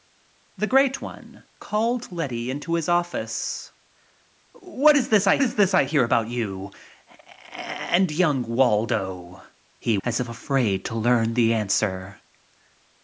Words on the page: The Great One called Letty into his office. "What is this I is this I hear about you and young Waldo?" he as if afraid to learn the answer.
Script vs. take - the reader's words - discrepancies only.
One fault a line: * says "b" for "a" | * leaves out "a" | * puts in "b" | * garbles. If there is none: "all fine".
all fine